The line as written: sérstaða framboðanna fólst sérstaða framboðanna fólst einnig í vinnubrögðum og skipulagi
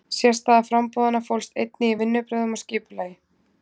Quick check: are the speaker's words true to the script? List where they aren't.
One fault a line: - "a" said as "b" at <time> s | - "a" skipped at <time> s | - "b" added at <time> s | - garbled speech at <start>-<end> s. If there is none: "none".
- "sérstaða framboðanna fólst" skipped at 1.5 s